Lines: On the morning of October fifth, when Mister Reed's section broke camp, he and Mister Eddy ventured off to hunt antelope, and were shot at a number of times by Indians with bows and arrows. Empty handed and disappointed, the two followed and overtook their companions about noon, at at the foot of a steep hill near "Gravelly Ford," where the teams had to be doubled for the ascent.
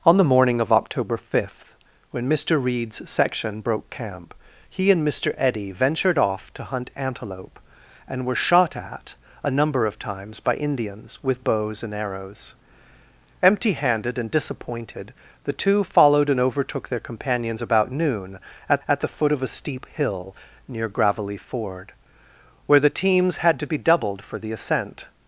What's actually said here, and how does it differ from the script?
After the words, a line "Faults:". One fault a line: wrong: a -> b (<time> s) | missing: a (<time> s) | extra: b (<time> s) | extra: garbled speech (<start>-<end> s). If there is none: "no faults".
On the morning of October fifth, when Mister Reed's section broke camp, he and Mister Eddy ventured off to hunt antelope, and were shot at a number of times by Indians with bows and arrows. Empty handed and disappointed, the two followed and overtook their companions about noon, at at the foot of a steep hill near "Gravelly Ford," where the teams had to be doubled for the ascent.
Faults:
no faults